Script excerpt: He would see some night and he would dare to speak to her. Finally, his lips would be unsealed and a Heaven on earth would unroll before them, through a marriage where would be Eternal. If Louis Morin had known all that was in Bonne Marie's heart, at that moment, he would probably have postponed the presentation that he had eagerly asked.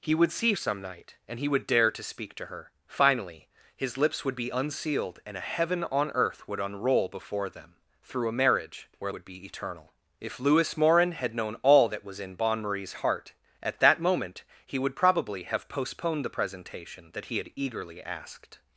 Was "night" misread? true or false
false